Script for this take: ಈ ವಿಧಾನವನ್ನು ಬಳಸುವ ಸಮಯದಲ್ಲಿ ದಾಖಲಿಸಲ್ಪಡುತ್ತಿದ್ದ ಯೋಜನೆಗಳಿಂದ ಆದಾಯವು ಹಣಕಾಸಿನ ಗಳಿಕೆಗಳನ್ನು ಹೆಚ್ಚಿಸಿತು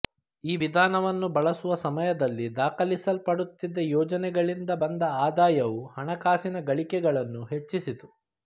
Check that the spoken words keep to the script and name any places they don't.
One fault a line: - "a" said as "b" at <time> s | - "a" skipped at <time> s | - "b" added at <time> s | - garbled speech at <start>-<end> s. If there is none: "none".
- "ಬಂದ" added at 4.8 s